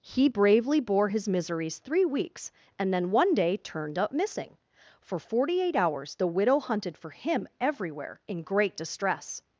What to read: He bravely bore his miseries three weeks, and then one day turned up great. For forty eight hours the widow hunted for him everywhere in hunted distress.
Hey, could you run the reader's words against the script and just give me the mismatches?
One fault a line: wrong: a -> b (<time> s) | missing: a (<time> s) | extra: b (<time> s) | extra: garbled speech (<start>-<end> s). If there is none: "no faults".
wrong: great -> missing (4.1 s)
wrong: hunted -> great (8.4 s)